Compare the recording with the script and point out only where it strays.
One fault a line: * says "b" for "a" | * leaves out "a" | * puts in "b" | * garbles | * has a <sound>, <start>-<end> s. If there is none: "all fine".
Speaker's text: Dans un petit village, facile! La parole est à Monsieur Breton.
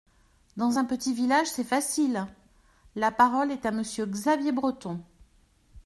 * puts in "c'est"
* puts in "Xavier"